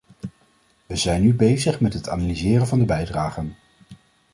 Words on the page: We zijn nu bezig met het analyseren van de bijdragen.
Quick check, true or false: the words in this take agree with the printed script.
true